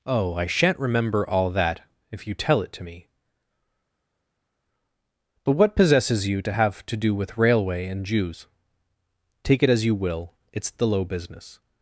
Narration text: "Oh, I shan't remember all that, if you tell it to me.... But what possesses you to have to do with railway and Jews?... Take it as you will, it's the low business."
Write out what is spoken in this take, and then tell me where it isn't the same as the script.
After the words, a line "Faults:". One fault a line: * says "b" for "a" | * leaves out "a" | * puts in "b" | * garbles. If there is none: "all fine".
"Oh, I shan't remember all that, if you tell it to me.... But what possesses you to have to do with railway and Jews?... Take it as you will, it's the low business."
Faults:
all fine